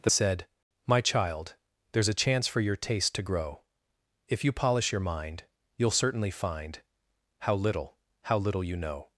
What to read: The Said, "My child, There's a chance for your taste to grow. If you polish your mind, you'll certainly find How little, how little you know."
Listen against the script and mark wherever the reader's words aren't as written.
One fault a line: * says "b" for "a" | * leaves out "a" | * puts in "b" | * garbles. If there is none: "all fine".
all fine